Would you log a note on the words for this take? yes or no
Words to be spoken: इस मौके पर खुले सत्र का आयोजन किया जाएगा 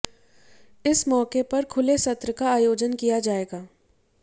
no